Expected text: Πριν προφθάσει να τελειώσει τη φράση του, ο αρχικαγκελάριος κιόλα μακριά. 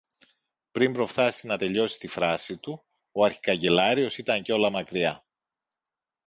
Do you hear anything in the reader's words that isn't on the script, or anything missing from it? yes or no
yes